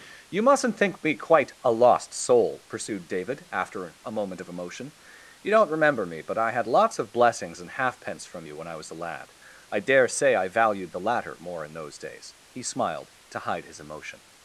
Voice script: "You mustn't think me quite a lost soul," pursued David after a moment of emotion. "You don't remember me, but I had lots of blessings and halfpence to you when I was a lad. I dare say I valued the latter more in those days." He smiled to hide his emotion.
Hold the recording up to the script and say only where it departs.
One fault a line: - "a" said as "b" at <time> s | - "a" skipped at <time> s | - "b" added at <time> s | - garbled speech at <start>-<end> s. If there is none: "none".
- "to" said as "from" at 8.2 s